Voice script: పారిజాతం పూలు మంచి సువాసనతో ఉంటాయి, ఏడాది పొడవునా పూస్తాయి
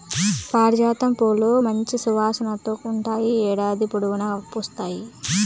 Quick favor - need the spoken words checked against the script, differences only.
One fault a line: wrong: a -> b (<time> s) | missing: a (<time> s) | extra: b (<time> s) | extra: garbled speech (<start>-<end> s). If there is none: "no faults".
no faults